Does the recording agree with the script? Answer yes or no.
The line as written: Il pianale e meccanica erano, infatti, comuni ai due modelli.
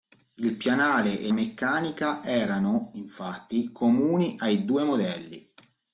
yes